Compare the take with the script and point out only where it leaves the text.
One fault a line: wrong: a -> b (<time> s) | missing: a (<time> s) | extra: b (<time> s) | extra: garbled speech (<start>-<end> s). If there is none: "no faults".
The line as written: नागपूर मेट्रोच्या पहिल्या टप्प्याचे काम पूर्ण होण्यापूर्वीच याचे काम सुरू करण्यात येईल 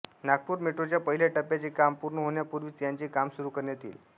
no faults